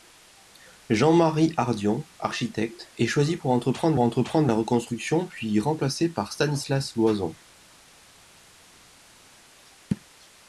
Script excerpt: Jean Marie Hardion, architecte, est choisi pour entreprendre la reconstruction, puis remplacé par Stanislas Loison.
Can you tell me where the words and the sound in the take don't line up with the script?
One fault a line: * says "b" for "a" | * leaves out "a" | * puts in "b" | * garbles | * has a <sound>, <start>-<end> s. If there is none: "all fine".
* puts in "entreprendre"